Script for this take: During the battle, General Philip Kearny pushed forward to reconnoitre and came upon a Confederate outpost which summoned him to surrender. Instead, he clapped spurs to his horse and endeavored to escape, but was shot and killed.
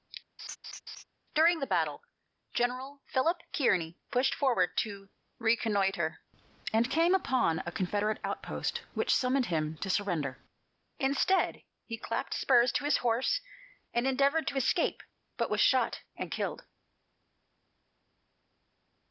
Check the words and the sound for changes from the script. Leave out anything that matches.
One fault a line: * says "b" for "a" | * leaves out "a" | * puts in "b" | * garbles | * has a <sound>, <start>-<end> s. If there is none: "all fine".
* has a laugh, 0.4-1.0 s